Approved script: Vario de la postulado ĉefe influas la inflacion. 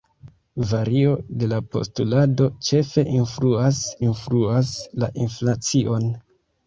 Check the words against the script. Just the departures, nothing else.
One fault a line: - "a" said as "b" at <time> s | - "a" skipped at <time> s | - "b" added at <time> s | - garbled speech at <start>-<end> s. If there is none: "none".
- "influas" added at 4.1 s